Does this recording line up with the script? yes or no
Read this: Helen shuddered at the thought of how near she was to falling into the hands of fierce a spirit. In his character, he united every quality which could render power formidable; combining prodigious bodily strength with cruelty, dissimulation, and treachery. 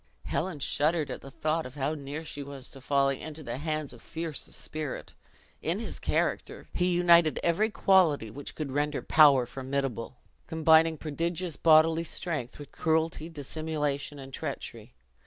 yes